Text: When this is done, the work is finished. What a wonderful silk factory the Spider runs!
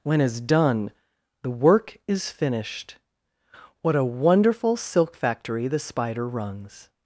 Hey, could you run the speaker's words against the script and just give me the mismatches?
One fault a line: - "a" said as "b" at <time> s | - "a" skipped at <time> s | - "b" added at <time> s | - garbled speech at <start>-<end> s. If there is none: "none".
- "this" skipped at 0.2 s